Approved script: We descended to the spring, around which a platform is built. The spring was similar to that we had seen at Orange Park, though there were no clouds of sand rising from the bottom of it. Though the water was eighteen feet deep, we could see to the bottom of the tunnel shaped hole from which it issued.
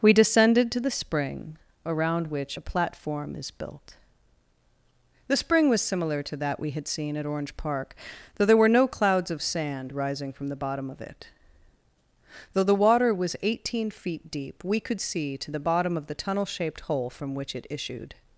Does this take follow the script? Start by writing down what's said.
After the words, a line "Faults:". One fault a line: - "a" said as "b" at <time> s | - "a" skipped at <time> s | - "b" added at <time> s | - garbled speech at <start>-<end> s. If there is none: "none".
We descended to the spring, around which a platform is built. The spring was similar to that we had seen at Orange Park, though there were no clouds of sand rising from the bottom of it. Though the water was eighteen feet deep, we could see to the bottom of the tunnel shaped hole from which it issued.
Faults:
none